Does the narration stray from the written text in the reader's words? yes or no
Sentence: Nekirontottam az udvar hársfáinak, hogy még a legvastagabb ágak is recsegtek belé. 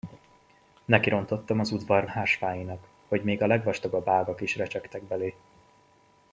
no